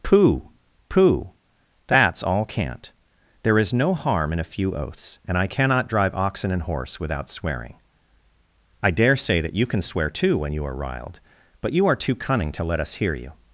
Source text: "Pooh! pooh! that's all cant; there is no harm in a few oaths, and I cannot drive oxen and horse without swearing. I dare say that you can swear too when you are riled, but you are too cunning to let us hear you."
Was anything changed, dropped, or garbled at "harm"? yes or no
no